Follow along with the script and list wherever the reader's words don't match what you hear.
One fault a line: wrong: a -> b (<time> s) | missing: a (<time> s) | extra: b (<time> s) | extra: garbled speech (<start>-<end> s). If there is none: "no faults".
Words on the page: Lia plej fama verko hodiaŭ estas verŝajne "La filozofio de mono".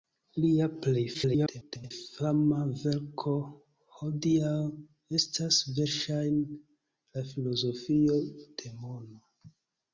extra: garbled speech (1.1-1.9 s)